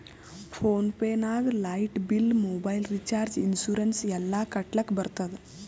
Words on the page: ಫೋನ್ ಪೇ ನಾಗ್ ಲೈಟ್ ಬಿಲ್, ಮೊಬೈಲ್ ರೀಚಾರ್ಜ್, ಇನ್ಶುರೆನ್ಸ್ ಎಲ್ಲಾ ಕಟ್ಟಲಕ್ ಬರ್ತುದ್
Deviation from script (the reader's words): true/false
false